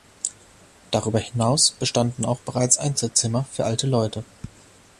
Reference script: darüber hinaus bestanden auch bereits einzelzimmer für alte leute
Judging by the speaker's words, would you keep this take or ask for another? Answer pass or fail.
pass